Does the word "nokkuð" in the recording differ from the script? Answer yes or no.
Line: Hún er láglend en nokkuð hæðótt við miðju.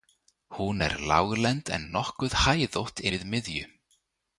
no